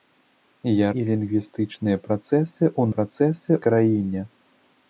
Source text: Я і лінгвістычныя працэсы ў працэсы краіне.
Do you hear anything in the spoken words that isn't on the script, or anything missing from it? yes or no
no